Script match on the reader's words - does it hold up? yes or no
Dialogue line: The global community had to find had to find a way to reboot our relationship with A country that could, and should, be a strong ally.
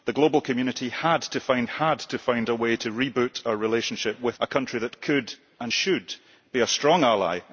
yes